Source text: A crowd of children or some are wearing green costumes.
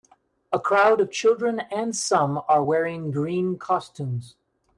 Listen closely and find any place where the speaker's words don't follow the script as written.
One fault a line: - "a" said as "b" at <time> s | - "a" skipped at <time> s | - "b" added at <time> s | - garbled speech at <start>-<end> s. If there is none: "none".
- "or" said as "and" at 1.6 s